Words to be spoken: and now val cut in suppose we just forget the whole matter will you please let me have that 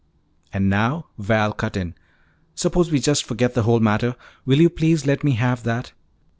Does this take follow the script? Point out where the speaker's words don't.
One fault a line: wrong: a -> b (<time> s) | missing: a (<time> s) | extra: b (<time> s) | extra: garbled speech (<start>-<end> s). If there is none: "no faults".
no faults